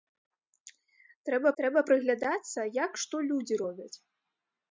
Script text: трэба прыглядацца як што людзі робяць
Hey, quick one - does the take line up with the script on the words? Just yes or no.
no